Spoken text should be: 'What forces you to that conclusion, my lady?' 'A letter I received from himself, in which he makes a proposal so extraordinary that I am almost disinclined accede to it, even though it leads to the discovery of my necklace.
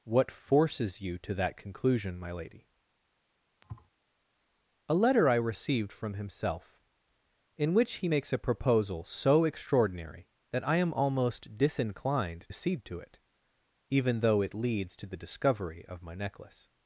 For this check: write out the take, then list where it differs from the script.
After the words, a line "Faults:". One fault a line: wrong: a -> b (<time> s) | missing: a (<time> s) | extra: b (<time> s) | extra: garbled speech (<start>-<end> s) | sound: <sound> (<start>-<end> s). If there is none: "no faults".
'What forces you to that conclusion, my lady?' 'A letter I received from himself, in which he makes a proposal so extraordinary that I am almost disinclined accede to it, even though it leads to the discovery of my necklace.
Faults:
sound: thud (3.6-3.9 s)